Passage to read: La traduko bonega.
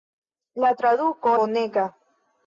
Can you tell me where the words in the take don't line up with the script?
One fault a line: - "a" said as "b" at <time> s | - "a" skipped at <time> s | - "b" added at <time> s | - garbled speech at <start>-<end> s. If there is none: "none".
none